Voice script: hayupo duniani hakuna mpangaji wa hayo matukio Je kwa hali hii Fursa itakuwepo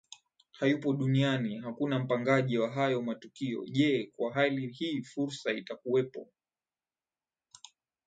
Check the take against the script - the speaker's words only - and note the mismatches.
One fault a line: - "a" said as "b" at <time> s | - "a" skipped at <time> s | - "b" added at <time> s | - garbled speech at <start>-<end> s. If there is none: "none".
none